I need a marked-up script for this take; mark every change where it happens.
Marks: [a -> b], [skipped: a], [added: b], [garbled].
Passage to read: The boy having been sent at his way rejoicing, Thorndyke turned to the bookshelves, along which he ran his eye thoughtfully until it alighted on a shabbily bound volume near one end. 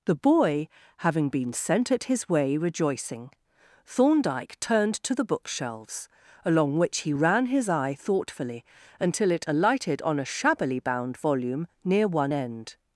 The boy having been sent at his way rejoicing, Thorndyke turned to the bookshelves, along which he ran his eye thoughtfully until it alighted on a shabbily bound volume near one end.